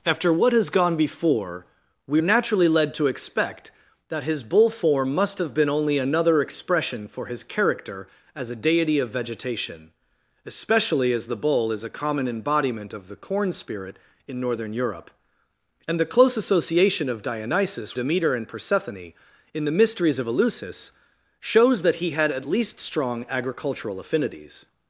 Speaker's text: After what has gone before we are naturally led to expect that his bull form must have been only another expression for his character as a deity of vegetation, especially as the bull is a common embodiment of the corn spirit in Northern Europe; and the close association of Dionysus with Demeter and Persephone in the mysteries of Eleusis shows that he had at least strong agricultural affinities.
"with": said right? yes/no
no